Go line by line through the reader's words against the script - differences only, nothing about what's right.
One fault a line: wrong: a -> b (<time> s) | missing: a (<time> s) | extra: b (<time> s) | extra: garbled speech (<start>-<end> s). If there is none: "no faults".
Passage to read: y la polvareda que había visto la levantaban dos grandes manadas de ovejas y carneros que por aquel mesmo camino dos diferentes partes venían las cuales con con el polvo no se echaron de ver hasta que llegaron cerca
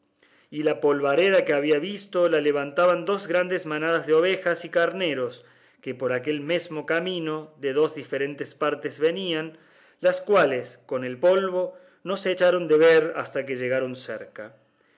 extra: de (7.6 s)
missing: con (11.0 s)